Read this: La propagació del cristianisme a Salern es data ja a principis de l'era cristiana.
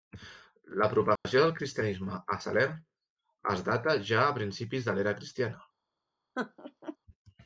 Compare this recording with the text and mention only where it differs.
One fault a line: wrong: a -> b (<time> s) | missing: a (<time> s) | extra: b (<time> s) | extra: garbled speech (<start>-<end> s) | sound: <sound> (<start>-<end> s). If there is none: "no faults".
sound: dropout (1.2-1.2 s)
sound: laugh (6.4-7.0 s)